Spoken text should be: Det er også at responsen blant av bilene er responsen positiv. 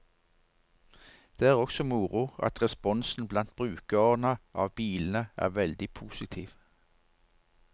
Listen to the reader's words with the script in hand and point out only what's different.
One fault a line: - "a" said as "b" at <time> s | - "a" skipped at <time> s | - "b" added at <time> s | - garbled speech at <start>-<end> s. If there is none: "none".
- "moro" added at 1.8 s
- "brukerne" added at 3.6 s
- "responsen" said as "veldig" at 5.6 s